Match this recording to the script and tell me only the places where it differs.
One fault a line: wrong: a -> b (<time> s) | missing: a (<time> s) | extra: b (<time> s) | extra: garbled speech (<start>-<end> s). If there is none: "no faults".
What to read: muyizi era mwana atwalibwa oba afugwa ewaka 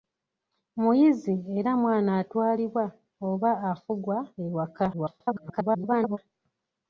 extra: garbled speech (4.9-6.2 s)